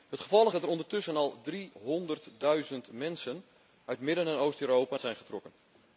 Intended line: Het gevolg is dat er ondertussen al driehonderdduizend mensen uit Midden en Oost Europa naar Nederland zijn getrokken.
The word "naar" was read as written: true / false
false